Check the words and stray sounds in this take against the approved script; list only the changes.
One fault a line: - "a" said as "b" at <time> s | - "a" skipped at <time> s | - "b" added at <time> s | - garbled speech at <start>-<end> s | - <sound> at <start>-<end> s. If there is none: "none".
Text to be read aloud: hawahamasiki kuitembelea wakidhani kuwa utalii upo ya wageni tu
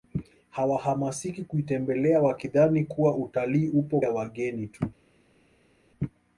none